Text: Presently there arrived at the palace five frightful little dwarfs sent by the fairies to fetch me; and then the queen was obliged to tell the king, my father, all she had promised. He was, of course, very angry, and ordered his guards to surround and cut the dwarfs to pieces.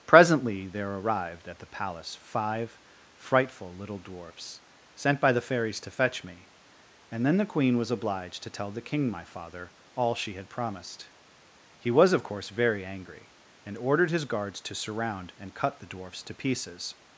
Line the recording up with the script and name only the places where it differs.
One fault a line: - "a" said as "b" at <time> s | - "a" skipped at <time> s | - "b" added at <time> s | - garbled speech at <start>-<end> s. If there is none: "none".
none